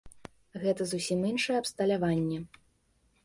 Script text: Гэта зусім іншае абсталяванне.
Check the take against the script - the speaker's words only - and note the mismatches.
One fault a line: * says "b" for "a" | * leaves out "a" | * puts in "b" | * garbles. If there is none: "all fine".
all fine